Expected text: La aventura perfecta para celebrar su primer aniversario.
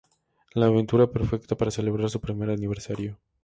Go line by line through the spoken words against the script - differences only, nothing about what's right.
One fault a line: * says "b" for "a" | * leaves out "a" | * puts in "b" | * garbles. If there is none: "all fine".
all fine